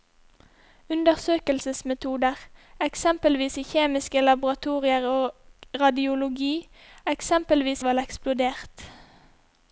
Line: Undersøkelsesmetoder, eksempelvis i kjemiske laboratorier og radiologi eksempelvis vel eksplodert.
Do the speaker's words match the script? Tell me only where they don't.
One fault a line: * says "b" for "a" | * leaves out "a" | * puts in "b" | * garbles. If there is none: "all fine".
all fine